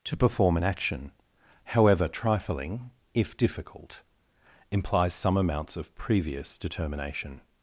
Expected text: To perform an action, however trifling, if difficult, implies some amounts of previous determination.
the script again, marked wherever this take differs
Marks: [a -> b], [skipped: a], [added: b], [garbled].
To perform an action, however trifling, if difficult, implies some amounts of previous determination.